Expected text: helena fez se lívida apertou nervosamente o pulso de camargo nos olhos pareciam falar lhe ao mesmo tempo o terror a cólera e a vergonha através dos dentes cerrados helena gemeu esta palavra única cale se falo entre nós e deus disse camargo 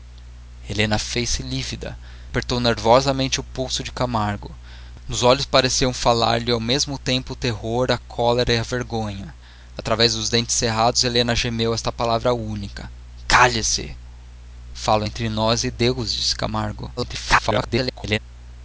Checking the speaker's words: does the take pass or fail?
fail